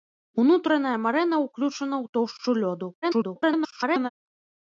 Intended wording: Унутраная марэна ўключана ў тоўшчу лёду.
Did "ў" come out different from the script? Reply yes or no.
no